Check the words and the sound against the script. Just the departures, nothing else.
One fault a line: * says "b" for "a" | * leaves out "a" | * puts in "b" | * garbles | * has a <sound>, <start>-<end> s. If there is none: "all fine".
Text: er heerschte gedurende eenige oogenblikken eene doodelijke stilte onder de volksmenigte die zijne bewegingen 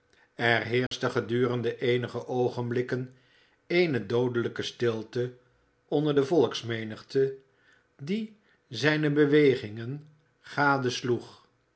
* has a dropout, 0.9-0.9 s